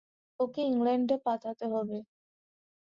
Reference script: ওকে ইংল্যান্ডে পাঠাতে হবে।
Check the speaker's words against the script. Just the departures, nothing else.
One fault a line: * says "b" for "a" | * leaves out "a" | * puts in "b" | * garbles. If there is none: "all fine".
all fine